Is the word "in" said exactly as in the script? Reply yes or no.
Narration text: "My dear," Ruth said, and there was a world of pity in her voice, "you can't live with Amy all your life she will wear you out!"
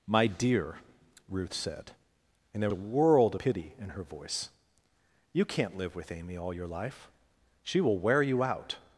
yes